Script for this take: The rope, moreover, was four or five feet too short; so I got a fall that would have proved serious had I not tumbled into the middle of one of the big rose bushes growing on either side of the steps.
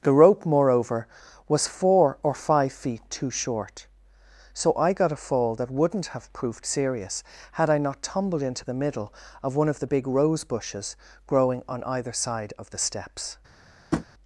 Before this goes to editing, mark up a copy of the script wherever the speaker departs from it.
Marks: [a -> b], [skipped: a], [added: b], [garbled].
The rope, moreover, was four or five feet too short; so I got a fall that [would -> wouldn't] have proved serious had I not tumbled into the middle of one of the big rose bushes growing on either side of the steps.